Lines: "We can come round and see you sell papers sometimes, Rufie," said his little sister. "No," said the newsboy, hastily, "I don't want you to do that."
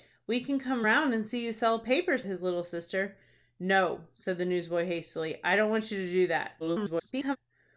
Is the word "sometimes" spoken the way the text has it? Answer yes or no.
no